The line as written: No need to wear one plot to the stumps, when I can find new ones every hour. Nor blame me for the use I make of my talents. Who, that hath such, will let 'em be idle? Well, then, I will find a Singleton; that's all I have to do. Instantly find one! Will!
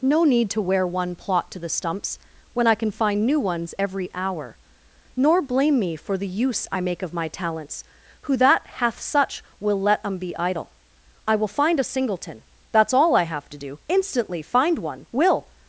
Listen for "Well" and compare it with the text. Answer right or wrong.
wrong